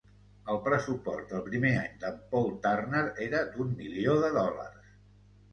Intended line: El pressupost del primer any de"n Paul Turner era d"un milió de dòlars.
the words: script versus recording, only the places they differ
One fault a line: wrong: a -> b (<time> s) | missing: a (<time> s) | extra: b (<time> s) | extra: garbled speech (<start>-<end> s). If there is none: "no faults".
no faults